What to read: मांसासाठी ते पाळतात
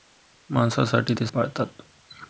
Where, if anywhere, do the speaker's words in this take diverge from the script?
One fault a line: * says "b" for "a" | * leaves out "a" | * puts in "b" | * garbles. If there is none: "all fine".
all fine